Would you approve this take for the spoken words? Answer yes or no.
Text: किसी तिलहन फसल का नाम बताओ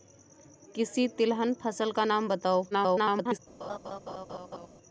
no